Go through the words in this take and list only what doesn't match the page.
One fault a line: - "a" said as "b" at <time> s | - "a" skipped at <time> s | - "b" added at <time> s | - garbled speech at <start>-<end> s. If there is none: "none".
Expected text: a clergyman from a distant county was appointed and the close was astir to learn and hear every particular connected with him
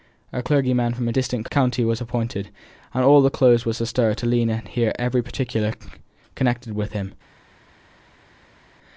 - "all" added at 3.0 s